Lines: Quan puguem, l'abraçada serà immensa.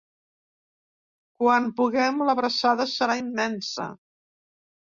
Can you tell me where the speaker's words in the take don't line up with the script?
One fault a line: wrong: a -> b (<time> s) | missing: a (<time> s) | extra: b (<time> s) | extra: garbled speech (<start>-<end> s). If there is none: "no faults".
no faults